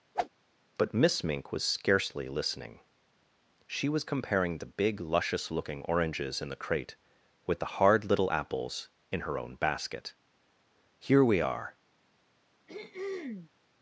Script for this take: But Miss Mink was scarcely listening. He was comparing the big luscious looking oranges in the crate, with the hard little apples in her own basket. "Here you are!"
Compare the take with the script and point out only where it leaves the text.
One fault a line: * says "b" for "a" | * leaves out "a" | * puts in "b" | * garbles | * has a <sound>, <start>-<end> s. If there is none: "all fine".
* has a whoosh, 0.1-0.3 s
* says "She" for "He"
* says "we" for "you"
* has a throat clearing, 12.7-13.5 s